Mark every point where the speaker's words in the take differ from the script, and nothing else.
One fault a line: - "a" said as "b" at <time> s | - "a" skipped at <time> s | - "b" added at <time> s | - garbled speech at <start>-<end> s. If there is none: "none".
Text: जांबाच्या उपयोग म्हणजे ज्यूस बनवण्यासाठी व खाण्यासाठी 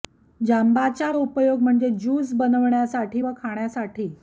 none